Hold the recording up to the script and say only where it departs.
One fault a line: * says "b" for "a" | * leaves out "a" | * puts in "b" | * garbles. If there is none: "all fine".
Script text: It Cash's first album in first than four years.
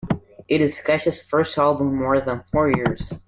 * puts in "is"
* says "more" for "first"